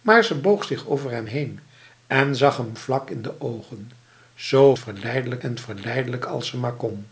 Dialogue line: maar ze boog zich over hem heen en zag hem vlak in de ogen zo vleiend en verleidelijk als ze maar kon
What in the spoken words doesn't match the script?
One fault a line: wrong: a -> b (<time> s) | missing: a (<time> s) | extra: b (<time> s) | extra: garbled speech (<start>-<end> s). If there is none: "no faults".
wrong: vleiend -> verleidelijk (4.8 s)